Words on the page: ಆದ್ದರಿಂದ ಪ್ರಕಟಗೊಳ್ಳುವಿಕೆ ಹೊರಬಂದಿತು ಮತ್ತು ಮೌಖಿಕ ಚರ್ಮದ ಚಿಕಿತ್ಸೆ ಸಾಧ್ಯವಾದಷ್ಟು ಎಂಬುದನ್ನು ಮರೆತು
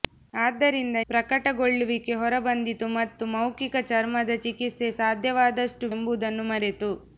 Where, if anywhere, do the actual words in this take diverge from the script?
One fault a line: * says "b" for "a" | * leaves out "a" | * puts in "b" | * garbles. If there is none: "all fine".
all fine